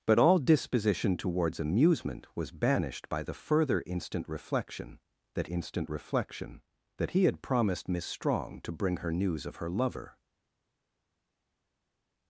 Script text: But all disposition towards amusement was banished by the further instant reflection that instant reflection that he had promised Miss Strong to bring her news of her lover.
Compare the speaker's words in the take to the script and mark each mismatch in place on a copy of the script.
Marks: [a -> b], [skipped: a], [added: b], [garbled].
But all disposition towards amusement was banished by the further instant reflection that instant reflection that he had promised Miss Strong to bring her news of her lover.